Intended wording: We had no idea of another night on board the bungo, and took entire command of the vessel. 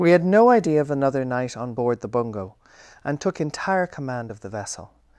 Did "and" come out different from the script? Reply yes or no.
no